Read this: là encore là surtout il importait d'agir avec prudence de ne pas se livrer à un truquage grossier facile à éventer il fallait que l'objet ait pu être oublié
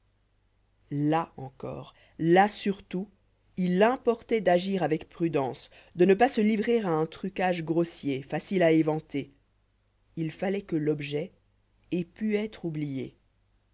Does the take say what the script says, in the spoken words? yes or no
yes